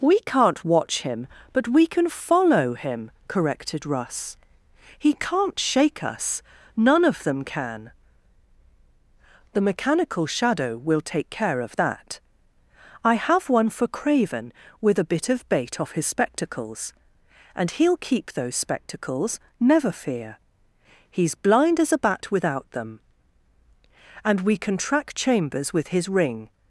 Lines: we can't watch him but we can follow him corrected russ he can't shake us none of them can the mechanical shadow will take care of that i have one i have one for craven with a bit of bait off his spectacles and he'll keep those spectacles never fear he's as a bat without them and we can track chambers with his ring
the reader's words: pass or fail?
fail